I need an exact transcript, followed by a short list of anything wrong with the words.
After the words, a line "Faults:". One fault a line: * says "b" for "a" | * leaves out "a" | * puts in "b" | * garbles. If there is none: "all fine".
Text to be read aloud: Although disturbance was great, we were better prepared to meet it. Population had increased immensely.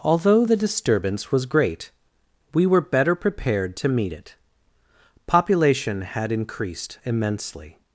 Although the disturbance was great, we were better prepared to meet it. Population had increased immensely.
Faults:
* puts in "the"